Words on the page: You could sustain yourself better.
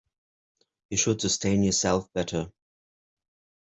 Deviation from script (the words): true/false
true